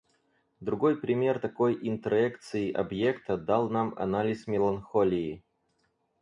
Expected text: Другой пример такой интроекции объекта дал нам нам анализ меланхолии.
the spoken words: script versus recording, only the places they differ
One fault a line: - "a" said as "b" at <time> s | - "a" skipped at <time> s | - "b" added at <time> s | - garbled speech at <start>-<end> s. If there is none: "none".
- "нам" skipped at 3.9 s